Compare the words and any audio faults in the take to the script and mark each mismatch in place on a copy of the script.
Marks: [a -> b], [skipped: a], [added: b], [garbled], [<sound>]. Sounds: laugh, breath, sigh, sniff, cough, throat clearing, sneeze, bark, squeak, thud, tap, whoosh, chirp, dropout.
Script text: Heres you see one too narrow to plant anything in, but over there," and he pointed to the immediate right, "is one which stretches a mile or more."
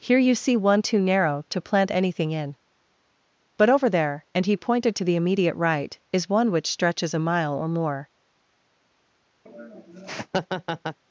[Heres -> Here] you see one too narrow to plant anything in, but over there," and he pointed to the immediate right, "is one which stretches a mile or more." [laugh]